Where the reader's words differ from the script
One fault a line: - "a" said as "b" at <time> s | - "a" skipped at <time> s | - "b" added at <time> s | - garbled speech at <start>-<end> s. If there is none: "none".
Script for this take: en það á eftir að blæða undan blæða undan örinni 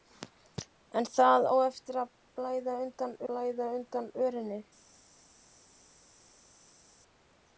none